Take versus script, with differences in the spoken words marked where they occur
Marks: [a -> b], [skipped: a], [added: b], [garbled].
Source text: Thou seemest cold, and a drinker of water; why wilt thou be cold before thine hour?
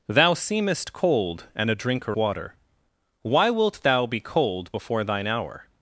Thou seemest cold, and a drinker [skipped: of] water; why wilt thou be cold before thine hour?